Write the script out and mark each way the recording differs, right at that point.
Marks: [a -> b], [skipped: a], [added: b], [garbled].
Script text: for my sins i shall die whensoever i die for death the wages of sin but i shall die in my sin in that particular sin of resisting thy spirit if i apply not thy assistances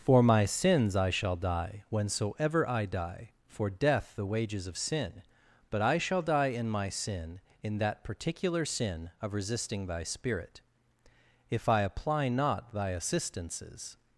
for my sins i shall die whensoever i die for death the wages of sin but i shall die in my sin in that particular sin of resisting thy spirit if i apply not thy assistances